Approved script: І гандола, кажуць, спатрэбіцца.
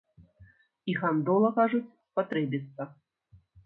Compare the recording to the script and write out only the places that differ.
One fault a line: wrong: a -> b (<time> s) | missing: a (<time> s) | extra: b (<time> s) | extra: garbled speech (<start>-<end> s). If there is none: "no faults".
no faults